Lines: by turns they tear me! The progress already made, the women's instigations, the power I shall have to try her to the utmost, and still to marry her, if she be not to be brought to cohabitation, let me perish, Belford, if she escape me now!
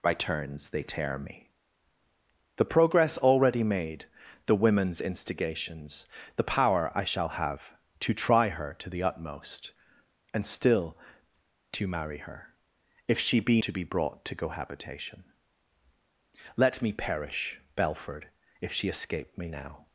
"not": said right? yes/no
no